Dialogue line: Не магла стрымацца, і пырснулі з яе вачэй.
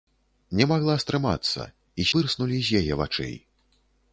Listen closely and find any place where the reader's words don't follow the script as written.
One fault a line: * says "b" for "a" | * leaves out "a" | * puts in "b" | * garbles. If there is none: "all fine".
all fine